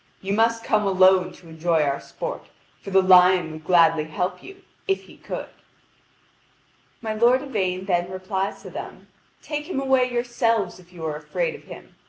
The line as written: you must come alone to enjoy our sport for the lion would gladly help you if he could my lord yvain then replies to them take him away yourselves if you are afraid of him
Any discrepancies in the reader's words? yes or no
no